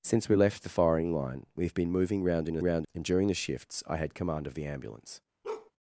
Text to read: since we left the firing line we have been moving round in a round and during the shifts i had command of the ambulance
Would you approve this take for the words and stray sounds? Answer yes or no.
no